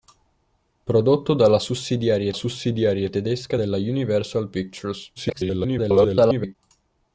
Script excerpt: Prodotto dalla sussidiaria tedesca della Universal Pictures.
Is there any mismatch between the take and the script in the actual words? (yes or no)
yes